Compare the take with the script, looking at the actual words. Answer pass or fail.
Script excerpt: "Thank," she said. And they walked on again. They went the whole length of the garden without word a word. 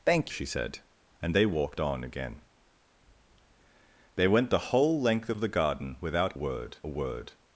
pass